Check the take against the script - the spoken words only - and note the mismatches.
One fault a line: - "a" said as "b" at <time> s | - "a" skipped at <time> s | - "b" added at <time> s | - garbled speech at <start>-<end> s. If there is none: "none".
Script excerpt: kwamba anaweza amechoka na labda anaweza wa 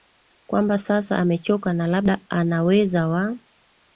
- "anaweza" said as "sasa" at 0.8 s